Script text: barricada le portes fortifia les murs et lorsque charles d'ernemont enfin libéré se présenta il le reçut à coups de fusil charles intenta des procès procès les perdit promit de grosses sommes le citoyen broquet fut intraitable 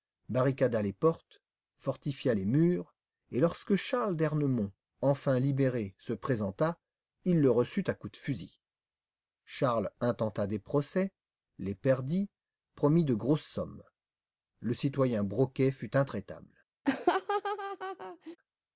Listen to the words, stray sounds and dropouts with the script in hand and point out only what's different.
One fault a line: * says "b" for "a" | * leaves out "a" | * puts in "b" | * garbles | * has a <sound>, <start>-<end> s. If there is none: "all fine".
* says "les" for "le"
* leaves out "procès"
* has a laugh, 16.8-18.4 s